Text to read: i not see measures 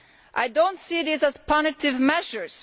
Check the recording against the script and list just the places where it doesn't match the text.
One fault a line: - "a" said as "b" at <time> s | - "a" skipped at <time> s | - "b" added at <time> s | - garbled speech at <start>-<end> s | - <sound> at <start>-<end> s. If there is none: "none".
- "do" added at 0.5 s
- "these as punitive" added at 1.0 s